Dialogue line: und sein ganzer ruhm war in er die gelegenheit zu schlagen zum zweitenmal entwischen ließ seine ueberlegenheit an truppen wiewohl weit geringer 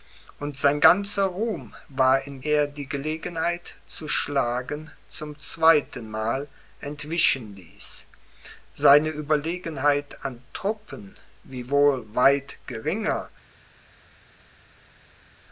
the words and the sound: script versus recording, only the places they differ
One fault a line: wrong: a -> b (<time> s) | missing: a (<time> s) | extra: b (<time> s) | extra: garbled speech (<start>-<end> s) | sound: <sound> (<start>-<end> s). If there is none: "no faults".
no faults